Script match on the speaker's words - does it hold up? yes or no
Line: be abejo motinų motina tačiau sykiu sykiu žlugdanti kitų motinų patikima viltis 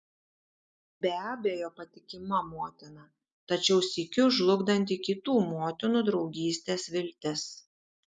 no